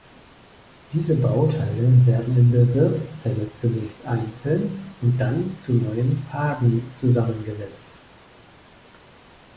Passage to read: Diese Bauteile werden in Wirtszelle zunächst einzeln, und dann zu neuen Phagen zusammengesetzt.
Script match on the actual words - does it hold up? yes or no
no